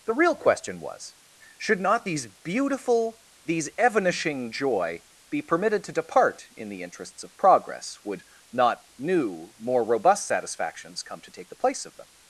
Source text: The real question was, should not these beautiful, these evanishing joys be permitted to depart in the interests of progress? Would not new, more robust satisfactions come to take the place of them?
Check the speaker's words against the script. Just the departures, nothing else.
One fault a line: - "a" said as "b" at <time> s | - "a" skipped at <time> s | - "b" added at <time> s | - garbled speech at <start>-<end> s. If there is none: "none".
- "joys" said as "joy" at 4.5 s